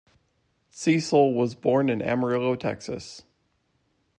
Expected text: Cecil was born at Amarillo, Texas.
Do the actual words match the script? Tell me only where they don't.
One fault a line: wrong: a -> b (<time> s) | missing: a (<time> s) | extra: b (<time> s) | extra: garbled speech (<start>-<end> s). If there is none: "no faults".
wrong: at -> in (1.9 s)